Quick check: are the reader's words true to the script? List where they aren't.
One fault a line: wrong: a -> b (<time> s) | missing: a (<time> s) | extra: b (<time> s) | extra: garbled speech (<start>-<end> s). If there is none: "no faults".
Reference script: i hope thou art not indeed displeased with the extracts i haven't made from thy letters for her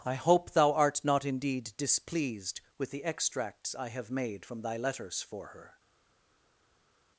wrong: haven't -> have (3.9 s)